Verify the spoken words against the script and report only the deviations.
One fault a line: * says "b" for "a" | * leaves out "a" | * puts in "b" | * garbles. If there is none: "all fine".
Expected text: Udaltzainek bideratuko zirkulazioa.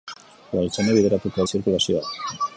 all fine